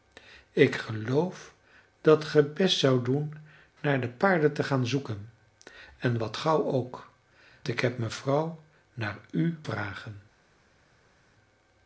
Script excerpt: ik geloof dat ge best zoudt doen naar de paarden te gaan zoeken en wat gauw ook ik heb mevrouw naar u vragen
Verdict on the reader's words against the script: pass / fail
pass